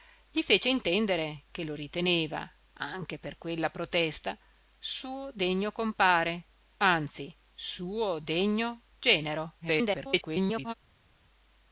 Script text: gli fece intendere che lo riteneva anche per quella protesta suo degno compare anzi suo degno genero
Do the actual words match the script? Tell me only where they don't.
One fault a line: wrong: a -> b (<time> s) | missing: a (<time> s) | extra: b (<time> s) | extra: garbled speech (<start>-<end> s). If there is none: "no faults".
extra: garbled speech (9.6-10.7 s)